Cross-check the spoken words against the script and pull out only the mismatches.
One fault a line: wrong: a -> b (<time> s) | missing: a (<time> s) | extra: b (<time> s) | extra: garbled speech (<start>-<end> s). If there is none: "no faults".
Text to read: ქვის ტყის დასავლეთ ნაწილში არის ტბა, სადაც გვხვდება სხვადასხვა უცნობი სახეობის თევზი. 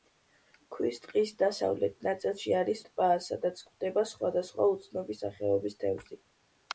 no faults